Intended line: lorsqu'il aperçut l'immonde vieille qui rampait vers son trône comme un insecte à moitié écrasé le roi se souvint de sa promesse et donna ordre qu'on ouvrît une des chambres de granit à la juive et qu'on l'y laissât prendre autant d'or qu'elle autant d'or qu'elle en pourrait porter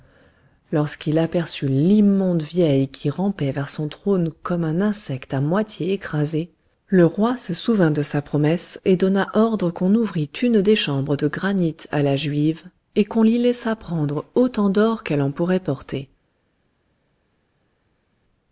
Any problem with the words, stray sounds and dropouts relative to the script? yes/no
yes